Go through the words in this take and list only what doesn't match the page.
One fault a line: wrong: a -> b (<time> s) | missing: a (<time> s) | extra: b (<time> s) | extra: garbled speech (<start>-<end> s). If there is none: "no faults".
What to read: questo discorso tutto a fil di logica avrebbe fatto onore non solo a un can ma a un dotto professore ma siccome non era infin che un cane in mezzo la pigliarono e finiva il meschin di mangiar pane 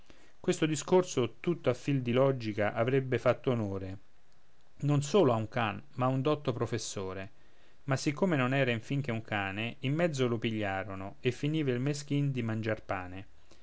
wrong: la -> lo (10.3 s)